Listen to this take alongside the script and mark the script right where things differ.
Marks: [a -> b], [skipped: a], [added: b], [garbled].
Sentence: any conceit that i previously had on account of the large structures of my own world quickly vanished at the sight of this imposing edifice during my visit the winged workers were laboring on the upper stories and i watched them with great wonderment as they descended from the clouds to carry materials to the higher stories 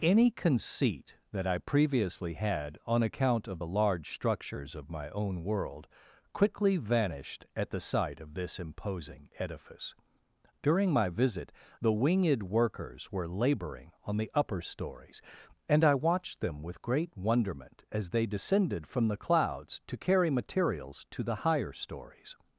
any conceit that i previously had on account of the large structures of my own world quickly vanished at the sight of this imposing edifice during my visit the winged workers were laboring on the upper stories and i watched them with great wonderment as they descended from the clouds to carry materials to the higher stories